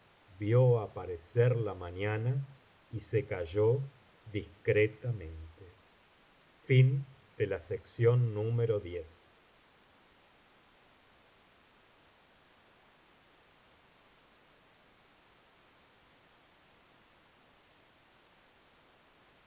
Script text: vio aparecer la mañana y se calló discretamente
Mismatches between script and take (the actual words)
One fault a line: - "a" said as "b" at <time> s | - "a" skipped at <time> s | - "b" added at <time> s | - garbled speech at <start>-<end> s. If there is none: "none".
none